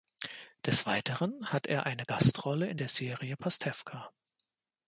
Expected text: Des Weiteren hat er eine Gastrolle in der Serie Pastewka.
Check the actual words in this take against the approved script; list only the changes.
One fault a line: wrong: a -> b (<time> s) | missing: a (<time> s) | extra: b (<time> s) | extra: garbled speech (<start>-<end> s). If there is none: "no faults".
no faults